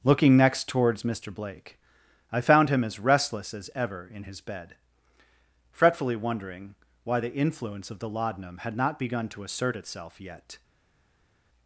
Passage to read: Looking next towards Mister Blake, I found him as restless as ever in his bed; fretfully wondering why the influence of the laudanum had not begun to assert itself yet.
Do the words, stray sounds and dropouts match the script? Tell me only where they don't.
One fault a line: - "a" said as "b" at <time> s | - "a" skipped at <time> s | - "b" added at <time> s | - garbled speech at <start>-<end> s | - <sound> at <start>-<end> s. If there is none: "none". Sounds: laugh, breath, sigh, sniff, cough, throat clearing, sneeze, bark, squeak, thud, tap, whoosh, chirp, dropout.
none